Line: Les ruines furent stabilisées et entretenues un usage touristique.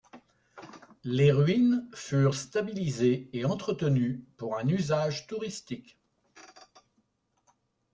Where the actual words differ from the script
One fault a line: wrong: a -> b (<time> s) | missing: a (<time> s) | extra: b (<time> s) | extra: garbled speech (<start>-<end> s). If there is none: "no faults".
extra: pour (4.4 s)